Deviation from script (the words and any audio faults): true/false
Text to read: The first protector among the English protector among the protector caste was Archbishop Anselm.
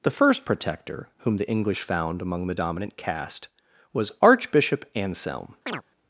true